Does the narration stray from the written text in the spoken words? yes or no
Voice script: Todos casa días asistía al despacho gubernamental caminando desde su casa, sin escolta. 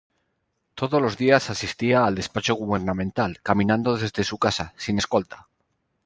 yes